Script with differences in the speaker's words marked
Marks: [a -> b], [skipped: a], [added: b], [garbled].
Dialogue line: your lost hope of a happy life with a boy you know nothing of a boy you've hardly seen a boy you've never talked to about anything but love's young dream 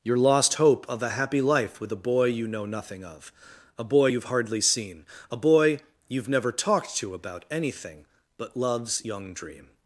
your lost hope of a happy life with a boy you know nothing of a boy you've hardly seen a boy you've never talked to about anything but love's young dream